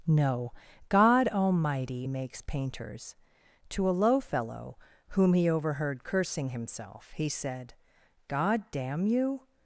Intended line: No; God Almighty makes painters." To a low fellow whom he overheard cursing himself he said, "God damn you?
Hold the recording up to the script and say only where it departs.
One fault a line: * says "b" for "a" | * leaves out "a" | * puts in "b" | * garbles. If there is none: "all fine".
all fine